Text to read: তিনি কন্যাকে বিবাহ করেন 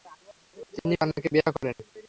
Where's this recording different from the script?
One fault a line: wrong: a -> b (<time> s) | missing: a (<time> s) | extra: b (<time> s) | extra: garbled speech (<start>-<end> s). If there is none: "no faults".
no faults